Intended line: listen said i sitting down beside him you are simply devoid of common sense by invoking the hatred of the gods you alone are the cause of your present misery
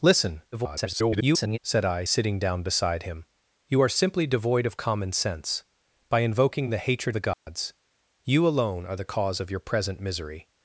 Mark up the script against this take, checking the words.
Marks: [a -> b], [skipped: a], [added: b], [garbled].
listen [garbled] said i sitting down beside him you are simply devoid of common sense by invoking the hatred [skipped: of] the gods you alone are the cause of your present misery